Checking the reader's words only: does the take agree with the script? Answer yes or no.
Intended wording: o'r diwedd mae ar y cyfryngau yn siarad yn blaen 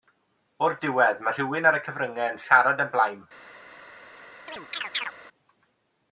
no